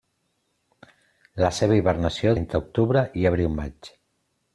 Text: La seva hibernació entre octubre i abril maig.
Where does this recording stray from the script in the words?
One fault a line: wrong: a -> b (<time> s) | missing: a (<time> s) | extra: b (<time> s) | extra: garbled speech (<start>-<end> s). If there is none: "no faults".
no faults